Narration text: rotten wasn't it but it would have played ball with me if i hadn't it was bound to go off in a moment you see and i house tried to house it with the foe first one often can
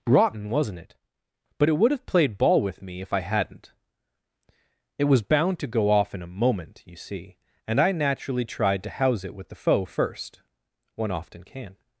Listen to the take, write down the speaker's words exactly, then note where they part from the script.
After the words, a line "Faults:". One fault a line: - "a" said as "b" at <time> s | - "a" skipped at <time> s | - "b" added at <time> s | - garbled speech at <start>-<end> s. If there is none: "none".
rotten wasn't it but it would have played ball with me if i hadn't it was bound to go off in a moment you see and i naturally tried to house it with the foe first one often can
Faults:
- "house" said as "naturally" at 7.9 s